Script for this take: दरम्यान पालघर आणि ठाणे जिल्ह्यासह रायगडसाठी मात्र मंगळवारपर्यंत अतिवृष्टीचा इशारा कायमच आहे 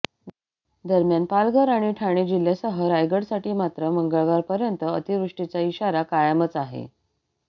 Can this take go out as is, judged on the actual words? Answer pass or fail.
pass